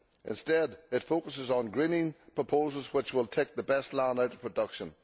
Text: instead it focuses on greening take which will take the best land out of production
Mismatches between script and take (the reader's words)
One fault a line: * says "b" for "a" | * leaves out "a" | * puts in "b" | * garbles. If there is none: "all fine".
* says "proposals" for "take"